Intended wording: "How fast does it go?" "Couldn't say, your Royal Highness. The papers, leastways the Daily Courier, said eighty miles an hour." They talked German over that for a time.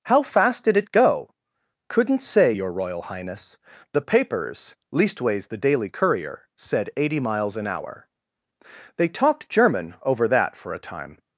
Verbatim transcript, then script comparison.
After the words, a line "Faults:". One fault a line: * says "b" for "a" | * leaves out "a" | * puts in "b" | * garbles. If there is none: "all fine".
"How fast did it go?" "Couldn't say, your Royal Highness. The papers, leastways the Daily Courier, said eighty miles an hour." They talked German over that for a time.
Faults:
* says "did" for "does"